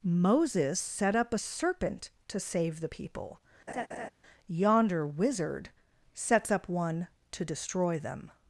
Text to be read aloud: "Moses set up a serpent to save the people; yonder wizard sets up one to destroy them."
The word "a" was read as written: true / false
true